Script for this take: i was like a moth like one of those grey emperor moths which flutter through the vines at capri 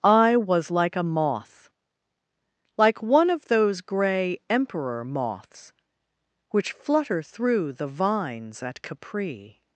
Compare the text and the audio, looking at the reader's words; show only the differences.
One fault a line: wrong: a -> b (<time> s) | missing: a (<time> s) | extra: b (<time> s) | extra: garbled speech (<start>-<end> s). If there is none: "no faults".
no faults